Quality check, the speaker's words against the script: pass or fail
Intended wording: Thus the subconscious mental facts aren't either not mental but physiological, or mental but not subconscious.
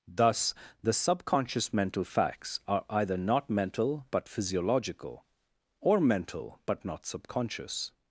fail